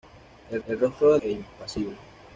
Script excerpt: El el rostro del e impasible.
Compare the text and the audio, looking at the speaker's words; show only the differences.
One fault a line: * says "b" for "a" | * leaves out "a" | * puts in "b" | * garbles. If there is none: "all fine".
all fine